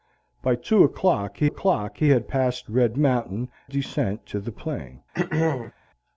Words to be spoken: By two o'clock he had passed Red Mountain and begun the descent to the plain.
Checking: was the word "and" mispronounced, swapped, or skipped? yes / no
yes